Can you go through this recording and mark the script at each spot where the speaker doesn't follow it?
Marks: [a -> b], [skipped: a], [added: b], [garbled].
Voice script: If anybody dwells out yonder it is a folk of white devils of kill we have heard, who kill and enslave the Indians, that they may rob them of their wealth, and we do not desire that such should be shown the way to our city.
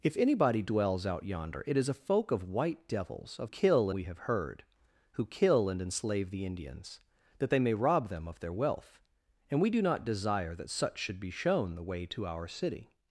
If anybody dwells out yonder it is a folk of white devils of kill we have heard, who kill and enslave the Indians, that they may rob them of their wealth, and we do not desire that such should be shown the way to our city.